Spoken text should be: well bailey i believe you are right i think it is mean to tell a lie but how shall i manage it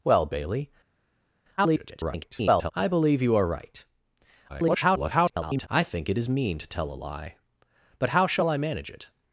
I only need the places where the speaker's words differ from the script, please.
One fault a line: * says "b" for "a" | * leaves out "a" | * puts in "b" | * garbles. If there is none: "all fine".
* garbles
* garbles